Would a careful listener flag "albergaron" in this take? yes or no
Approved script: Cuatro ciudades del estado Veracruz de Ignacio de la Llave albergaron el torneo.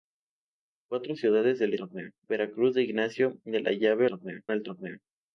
yes